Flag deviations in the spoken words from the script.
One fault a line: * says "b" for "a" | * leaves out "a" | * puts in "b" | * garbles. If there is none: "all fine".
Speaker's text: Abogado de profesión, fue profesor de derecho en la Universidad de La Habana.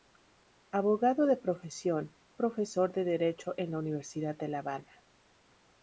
* leaves out "fue"